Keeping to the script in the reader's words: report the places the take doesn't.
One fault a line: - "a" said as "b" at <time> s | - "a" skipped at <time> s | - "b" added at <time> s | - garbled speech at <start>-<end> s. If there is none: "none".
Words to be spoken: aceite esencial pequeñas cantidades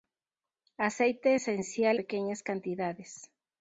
none